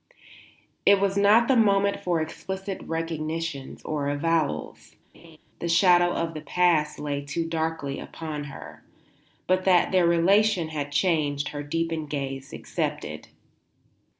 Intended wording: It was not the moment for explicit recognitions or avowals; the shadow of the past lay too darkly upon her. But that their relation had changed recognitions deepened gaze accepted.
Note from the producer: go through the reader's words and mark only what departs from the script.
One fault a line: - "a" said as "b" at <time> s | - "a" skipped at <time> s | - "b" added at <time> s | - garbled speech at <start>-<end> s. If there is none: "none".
- "recognitions" said as "her" at 11.5 s